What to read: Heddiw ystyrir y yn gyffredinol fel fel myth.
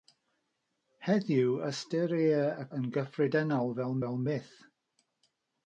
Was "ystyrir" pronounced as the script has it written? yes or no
yes